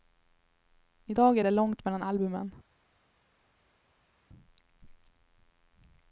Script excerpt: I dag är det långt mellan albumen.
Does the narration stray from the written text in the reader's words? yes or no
no